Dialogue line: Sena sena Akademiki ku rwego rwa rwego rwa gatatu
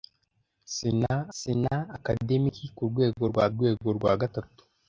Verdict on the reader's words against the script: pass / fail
pass